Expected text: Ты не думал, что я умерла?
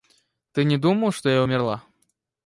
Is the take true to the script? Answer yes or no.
yes